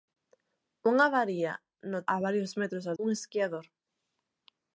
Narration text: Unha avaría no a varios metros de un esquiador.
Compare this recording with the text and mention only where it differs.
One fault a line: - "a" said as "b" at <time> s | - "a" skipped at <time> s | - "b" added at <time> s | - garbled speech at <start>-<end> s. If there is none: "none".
none